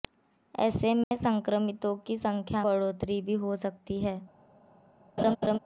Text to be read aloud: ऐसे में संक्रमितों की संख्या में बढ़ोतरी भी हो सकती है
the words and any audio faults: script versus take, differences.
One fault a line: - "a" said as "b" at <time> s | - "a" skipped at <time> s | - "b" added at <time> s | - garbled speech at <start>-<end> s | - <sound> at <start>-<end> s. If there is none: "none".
- dropout at 1.0-1.1 s
- "में" skipped at 2.6 s
- laugh at 5.2-5.6 s